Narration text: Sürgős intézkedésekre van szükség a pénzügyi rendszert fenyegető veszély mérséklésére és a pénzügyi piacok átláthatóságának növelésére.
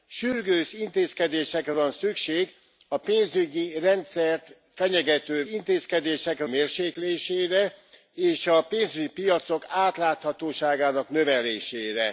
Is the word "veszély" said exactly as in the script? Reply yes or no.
no